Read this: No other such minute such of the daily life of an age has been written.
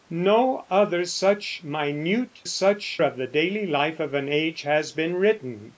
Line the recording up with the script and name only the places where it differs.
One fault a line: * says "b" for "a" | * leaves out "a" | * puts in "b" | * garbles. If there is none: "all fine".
all fine